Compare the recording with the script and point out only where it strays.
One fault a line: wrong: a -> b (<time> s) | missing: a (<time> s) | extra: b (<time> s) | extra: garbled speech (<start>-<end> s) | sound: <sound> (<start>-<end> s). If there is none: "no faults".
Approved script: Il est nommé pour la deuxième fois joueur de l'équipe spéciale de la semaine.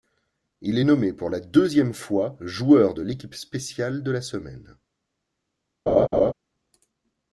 sound: laugh (5.9-6.3 s)